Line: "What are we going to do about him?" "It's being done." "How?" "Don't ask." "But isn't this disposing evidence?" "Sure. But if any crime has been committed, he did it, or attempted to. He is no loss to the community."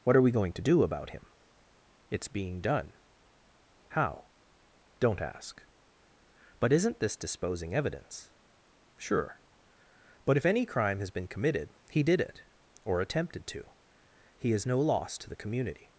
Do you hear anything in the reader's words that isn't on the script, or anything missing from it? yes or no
no